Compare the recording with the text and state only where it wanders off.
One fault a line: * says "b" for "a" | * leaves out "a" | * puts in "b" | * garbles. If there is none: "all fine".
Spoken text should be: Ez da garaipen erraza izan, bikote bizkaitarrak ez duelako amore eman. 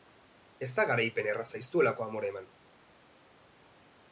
* leaves out "izan bikote bizkaitarrak"